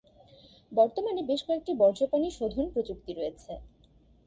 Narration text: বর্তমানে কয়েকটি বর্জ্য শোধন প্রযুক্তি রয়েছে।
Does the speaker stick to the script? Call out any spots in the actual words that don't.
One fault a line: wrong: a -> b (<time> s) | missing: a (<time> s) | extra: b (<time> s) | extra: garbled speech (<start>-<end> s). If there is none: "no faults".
extra: বেশ (1.3 s)
extra: পানি (2.1 s)